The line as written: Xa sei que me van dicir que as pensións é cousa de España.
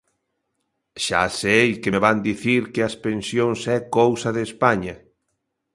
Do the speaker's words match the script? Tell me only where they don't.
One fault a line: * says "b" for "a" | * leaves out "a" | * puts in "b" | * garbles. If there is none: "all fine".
all fine